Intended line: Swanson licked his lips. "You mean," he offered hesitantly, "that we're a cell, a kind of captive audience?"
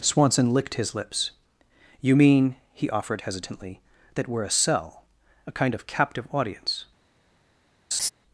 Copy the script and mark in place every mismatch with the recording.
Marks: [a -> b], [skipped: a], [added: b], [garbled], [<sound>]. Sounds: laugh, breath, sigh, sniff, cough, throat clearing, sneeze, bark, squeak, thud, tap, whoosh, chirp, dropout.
Swanson licked his lips. "You mean," he offered hesitantly, "that we're a cell, a kind of captive audience?" [laugh]